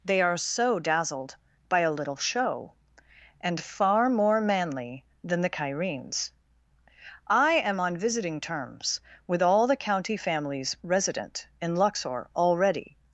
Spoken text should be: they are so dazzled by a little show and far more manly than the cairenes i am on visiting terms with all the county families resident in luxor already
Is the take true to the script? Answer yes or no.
yes